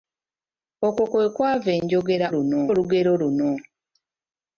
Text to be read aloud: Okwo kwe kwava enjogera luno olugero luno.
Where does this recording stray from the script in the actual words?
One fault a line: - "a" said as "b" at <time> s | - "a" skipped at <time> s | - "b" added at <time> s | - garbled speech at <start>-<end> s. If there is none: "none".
none